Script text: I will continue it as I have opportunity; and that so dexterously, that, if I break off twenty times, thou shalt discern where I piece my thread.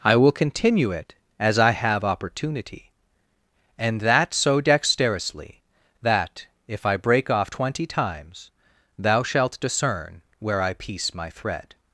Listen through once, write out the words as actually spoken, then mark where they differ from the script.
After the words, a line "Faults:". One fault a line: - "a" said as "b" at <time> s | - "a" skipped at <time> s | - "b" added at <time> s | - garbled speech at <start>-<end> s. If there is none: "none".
I will continue it as I have opportunity; and that so dexterously, that, if I break off twenty times, thou shalt discern where I piece my thread.
Faults:
none